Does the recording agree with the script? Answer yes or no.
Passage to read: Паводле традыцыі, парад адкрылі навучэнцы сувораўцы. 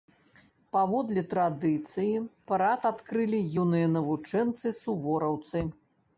no